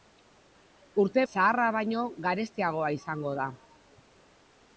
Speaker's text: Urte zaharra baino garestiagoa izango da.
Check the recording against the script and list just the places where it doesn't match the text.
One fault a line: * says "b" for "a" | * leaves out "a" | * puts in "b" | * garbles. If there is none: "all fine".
all fine